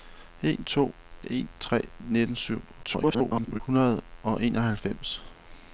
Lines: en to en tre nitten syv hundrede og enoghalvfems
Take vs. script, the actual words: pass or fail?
fail